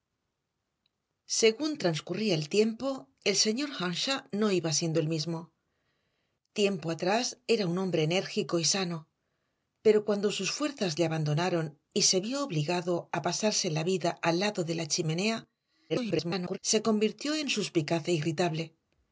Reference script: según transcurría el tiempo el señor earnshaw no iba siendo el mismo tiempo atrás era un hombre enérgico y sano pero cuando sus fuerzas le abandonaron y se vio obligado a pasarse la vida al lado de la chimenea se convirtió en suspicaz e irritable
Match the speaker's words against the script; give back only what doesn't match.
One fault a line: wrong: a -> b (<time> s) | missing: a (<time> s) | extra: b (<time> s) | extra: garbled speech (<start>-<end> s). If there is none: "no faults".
extra: garbled speech (15.9-16.6 s)